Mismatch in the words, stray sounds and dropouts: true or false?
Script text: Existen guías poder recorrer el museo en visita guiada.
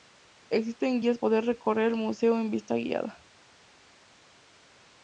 false